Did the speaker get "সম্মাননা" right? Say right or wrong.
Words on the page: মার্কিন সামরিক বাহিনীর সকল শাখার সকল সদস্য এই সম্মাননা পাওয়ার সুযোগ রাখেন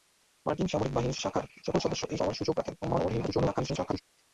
wrong